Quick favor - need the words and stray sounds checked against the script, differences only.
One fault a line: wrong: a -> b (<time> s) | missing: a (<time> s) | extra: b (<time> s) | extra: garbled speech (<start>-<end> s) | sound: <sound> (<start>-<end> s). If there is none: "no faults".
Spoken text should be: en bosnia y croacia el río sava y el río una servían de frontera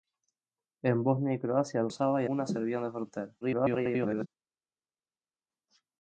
missing: río (1.9 s)
missing: el río (2.3 s)
extra: garbled speech (3.4-4.3 s)